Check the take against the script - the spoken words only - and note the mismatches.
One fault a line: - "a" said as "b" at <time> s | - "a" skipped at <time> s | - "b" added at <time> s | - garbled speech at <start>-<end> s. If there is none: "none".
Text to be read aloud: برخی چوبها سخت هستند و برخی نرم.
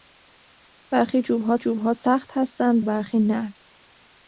- "چوبها" added at 1.6 s
- "و" skipped at 2.9 s